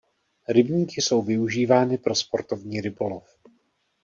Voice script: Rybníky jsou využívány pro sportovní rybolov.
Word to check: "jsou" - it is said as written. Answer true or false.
true